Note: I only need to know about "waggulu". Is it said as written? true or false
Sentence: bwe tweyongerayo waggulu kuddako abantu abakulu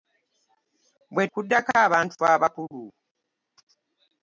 false